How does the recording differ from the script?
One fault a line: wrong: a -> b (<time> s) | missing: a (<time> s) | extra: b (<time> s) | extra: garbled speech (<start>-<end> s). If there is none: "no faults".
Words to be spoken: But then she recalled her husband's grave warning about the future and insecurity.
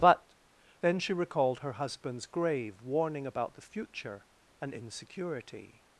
no faults